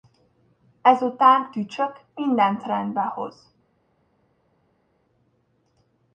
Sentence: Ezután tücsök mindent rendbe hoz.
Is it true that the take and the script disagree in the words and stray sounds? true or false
false